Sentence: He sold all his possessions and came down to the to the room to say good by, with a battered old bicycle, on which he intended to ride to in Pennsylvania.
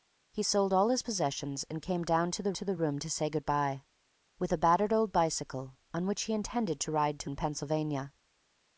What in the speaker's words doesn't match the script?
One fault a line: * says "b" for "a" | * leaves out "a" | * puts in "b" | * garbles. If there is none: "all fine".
all fine